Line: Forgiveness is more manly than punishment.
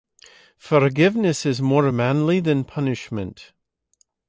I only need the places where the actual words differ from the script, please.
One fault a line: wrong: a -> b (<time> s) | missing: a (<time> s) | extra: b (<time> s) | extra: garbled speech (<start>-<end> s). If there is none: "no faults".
no faults